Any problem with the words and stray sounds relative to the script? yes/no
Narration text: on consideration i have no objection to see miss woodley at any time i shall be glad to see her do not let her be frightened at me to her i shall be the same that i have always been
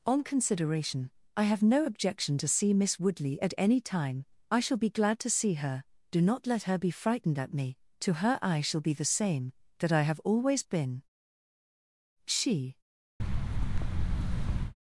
yes